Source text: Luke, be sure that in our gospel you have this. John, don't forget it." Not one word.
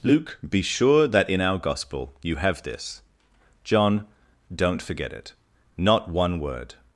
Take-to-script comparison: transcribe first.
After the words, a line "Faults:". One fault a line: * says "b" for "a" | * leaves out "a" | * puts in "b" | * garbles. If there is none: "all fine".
Luke, be sure that in our gospel you have this. John, don't forget it." Not one word.
Faults:
all fine